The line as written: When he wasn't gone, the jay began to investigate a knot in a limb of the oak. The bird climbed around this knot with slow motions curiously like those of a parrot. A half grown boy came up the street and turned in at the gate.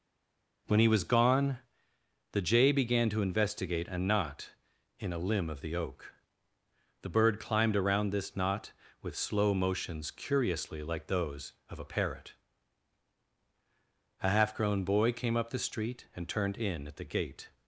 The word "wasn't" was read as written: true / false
false